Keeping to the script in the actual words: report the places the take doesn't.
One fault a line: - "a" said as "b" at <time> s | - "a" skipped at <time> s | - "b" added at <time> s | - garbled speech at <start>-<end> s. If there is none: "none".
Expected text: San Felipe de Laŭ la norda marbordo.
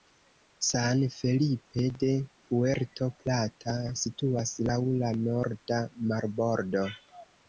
- "Puerto Plata situas" added at 2.5 s